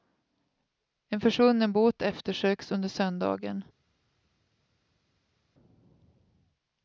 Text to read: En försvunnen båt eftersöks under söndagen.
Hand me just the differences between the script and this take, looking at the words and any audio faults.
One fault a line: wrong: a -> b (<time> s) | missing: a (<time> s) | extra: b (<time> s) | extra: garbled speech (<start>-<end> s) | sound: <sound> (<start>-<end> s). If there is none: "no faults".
no faults